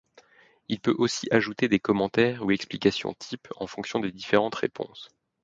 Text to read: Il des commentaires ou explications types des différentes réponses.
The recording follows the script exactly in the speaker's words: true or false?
false